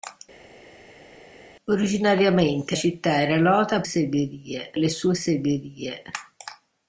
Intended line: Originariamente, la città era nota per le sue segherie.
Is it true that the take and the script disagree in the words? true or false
true